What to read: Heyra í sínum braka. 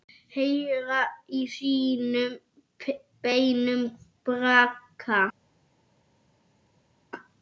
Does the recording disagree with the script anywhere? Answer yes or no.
yes